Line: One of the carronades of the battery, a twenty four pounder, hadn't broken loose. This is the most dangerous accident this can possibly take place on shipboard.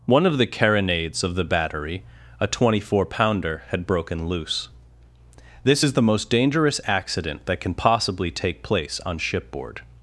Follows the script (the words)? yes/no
no